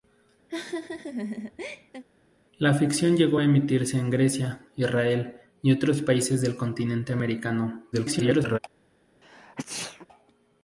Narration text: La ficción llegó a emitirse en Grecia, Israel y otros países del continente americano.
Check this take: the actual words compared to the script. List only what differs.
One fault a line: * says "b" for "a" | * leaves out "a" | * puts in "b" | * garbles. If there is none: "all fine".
* garbles